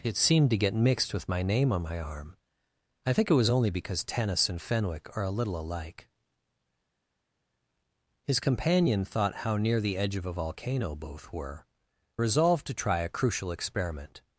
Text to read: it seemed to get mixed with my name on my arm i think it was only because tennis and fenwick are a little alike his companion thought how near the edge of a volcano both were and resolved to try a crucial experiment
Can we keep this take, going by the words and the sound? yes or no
no